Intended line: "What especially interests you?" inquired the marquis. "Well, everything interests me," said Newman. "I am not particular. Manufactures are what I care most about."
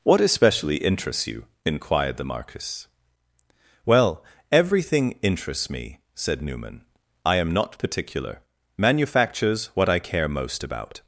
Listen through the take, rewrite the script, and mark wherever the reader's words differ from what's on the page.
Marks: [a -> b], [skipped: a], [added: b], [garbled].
"What especially interests you?" inquired the marquis. "Well, everything interests me," said Newman. "I am not particular. Manufactures [skipped: are] what I care most about."